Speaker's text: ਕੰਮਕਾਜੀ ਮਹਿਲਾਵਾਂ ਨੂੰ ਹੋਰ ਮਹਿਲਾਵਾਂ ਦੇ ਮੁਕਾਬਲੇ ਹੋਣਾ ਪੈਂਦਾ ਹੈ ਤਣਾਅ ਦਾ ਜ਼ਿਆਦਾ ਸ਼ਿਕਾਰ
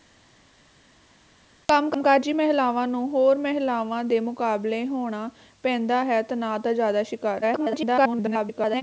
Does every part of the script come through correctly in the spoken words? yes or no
no